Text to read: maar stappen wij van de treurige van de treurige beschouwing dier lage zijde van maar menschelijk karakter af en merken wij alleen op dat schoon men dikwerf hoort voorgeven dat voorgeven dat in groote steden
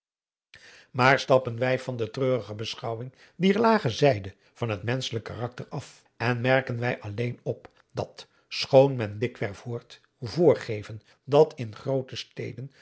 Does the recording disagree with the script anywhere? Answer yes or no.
yes